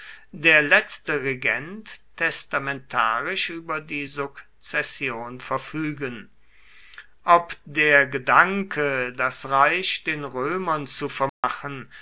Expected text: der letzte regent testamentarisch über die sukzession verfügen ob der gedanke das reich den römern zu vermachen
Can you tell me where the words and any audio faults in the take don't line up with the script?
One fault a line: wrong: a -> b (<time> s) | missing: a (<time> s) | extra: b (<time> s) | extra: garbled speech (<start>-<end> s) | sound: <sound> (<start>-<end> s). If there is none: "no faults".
sound: dropout (11.3-11.4 s)